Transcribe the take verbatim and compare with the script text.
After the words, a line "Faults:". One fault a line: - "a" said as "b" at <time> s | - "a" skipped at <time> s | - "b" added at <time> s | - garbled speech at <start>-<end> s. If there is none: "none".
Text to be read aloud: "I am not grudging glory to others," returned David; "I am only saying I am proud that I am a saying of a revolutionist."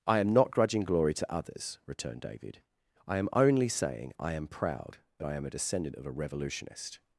"I am not grudging glory to others," returned David; "I am only saying I am proud that I am a descendant of a revolutionist."
Faults:
- "saying" said as "descendant" at 5.5 s